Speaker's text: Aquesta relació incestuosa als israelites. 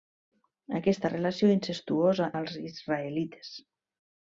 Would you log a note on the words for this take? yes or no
no